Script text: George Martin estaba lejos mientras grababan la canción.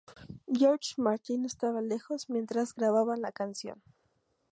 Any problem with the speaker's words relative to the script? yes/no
no